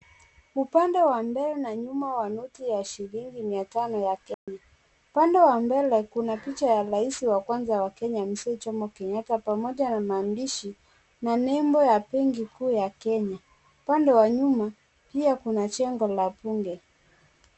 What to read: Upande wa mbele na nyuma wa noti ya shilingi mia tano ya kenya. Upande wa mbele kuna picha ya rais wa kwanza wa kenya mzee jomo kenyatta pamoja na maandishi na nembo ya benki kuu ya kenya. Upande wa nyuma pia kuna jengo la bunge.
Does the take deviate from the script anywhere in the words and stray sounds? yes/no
yes